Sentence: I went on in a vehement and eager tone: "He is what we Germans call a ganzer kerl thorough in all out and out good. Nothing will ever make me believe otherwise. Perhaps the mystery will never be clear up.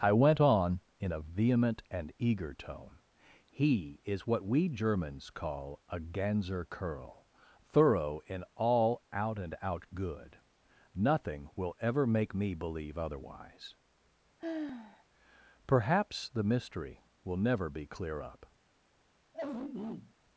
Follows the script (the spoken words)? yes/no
yes